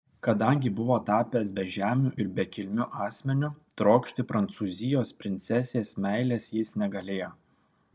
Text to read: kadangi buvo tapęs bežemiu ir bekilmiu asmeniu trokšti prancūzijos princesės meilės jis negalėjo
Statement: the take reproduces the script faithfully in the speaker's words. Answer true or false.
true